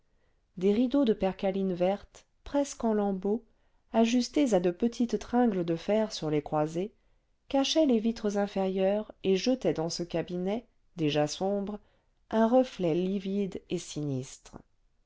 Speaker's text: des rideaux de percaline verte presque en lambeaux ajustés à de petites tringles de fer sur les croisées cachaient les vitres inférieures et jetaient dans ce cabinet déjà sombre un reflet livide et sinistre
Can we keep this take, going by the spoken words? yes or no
yes